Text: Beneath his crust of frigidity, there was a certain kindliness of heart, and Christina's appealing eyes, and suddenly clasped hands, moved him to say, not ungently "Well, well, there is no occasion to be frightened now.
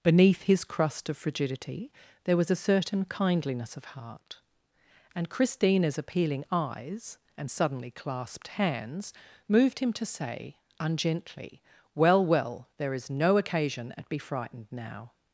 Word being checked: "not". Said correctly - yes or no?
no